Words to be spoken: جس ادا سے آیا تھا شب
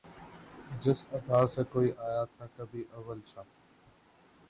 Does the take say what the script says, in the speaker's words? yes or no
no